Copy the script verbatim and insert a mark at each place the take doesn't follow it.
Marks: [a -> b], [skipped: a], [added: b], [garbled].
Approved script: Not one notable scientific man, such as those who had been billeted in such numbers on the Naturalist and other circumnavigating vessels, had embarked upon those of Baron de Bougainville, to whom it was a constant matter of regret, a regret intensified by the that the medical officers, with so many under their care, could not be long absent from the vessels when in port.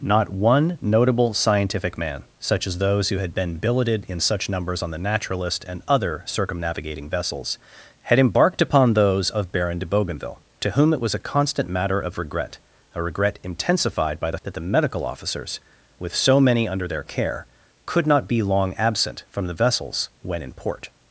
Not one notable scientific man, such as those who had been billeted in such numbers on the Naturalist and other circumnavigating vessels, had embarked upon those of Baron de Bougainville, to whom it was a constant matter of regret, a regret intensified by the that the medical officers, with so many under their care, could not be long absent from the vessels when in port.